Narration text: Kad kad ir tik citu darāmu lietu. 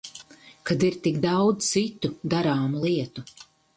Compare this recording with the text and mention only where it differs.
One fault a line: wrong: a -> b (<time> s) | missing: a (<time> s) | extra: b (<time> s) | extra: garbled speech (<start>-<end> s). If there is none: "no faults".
missing: kad (0.8 s)
extra: daudz (1.2 s)